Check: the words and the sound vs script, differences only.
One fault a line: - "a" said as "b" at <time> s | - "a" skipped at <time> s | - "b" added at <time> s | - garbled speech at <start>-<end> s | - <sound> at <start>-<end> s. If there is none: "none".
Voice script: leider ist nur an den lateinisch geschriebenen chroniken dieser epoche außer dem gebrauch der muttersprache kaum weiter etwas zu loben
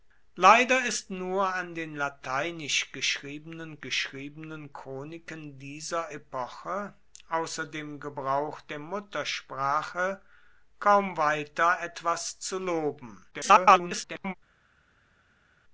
- "geschriebenen" added at 3.8 s
- garbled speech at 13.3-14.3 s